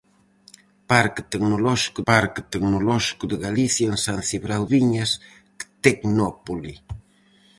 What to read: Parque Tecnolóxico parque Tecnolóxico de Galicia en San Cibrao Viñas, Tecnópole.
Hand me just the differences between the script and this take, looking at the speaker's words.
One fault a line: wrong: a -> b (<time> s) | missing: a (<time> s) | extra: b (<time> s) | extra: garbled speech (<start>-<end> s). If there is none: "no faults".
no faults